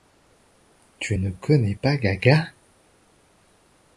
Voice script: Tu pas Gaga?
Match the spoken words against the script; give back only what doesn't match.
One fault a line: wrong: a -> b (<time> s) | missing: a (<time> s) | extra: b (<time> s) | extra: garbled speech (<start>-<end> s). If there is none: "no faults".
extra: ne connais (1.2 s)